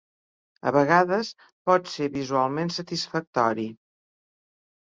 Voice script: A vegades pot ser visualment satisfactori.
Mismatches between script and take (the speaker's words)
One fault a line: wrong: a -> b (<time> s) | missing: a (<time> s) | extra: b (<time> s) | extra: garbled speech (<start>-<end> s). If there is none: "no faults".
no faults